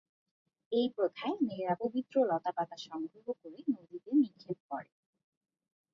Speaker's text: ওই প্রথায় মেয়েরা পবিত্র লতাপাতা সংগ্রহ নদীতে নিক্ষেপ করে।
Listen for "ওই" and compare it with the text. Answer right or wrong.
wrong